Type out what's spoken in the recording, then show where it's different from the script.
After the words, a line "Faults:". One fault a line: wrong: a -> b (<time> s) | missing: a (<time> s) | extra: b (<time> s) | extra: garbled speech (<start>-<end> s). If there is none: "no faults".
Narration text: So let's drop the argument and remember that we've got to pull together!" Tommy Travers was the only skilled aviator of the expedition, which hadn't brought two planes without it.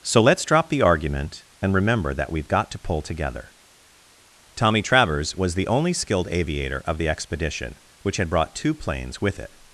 So let's drop the argument and remember that we've got to pull together!" Tommy Travers was the only skilled aviator of the expedition, which had brought two planes with it.
Faults:
wrong: hadn't -> had (8.2 s)
wrong: without -> with (9.2 s)